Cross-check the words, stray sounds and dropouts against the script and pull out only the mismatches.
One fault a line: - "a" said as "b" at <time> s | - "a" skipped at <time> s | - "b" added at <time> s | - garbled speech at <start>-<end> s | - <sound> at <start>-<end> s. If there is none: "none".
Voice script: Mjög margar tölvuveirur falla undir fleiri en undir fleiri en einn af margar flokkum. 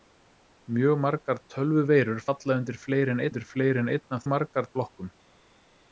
none